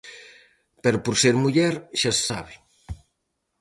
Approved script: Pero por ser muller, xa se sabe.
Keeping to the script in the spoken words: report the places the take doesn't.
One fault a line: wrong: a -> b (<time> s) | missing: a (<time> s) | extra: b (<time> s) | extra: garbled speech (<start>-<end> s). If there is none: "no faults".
no faults